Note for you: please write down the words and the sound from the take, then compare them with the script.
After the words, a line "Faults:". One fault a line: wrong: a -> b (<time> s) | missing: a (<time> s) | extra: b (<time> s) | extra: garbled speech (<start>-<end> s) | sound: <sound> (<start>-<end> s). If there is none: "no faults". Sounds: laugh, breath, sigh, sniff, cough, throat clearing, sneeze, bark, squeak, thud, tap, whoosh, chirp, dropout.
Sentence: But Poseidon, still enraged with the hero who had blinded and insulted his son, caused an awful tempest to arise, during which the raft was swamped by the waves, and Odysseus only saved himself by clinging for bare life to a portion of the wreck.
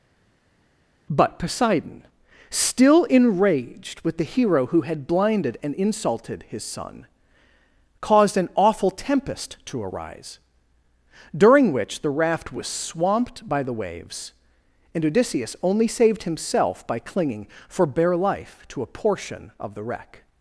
But Poseidon, still enraged with the hero who had blinded and insulted his son, caused an awful tempest to arise, during which the raft was swamped by the waves, and Odysseus only saved himself by clinging for bare life to a portion of the wreck.
Faults:
no faults